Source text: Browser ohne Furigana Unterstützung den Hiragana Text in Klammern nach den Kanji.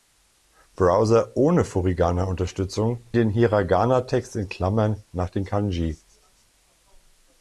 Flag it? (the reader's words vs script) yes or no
no